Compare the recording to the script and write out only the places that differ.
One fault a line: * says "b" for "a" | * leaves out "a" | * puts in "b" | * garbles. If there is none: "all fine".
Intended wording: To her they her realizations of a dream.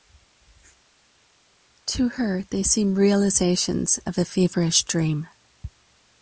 * says "seem" for "her"
* puts in "feverish"